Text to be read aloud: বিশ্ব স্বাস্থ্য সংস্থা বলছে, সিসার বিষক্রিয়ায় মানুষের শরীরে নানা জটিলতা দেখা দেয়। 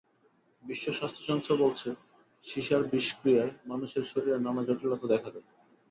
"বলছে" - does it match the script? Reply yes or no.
yes